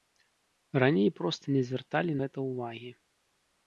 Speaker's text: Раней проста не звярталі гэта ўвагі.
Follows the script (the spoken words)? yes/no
yes